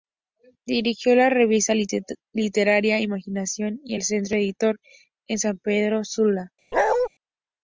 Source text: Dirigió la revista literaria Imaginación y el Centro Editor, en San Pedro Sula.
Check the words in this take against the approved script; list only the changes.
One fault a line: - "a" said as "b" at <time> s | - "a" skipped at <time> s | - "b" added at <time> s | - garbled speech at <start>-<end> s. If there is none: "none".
none